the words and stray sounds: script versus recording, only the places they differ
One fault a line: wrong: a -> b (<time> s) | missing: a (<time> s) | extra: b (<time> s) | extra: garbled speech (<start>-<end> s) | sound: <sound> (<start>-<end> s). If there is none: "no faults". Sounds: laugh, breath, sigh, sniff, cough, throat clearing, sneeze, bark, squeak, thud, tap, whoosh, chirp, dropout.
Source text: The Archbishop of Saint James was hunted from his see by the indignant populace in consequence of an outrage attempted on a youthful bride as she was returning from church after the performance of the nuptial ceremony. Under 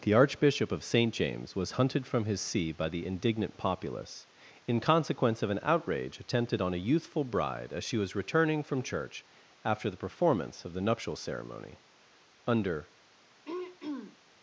sound: throat clearing (13.4-14.2 s)